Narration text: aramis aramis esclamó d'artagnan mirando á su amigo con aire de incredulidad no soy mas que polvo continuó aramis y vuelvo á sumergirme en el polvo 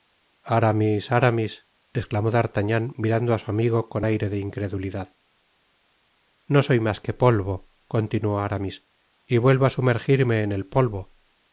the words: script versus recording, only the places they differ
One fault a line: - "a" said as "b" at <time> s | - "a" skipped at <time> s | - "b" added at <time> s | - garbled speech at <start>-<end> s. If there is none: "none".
none